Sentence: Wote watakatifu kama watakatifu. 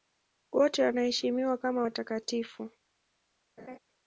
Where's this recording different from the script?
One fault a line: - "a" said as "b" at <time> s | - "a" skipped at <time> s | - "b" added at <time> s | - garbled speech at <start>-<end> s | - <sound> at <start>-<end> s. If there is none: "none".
- "watakatifu" said as "wanaheshimiwa" at 0.8 s
- laugh at 3.6-3.8 s